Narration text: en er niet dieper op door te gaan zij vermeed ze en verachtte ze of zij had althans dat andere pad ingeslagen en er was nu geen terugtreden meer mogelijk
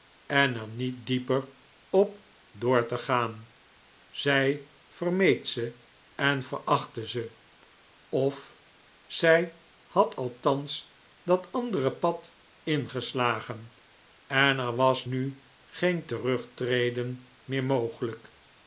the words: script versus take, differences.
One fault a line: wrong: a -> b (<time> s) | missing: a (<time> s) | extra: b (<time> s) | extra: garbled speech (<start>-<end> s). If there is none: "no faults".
no faults